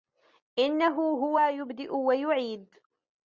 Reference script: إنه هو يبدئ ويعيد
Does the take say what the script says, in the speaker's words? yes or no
yes